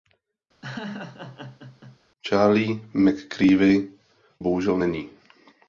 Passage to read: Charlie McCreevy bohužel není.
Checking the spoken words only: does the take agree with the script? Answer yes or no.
yes